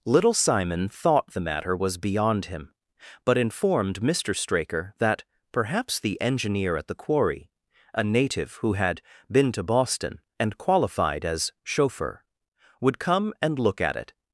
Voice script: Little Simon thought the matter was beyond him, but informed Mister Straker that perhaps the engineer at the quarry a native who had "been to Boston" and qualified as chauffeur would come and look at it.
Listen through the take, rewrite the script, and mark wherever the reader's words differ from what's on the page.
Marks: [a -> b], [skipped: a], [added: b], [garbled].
Little Simon thought the matter was beyond him, but informed Mister Straker that perhaps the engineer at the quarry a native who had "been to Boston" and qualified as chauffeur would come and look at it.